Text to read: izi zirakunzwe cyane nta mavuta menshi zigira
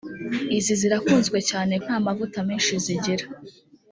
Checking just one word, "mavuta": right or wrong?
right